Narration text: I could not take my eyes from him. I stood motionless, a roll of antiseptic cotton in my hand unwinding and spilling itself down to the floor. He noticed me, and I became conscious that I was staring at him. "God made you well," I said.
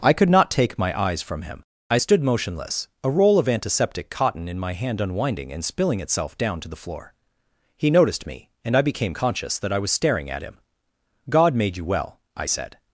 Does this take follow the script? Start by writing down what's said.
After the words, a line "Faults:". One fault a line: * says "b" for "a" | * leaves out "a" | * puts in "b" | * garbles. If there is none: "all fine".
I could not take my eyes from him. I stood motionless, a roll of antiseptic cotton in my hand unwinding and spilling itself down to the floor. He noticed me, and I became conscious that I was staring at him. "God made you well," I said.
Faults:
all fine